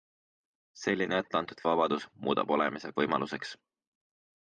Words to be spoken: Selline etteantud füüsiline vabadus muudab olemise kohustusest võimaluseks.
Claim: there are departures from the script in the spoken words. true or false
true